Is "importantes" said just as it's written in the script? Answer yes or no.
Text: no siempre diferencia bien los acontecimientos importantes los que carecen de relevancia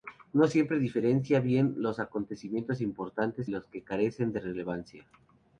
yes